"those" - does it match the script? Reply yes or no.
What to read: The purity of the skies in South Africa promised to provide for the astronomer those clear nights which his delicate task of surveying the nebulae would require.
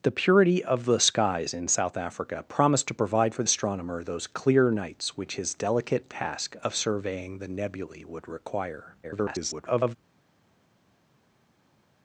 yes